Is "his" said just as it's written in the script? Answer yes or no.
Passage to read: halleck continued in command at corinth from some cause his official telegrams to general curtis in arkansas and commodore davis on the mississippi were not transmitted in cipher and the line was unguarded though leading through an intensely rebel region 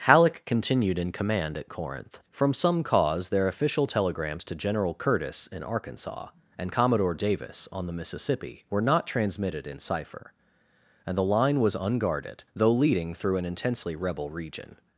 no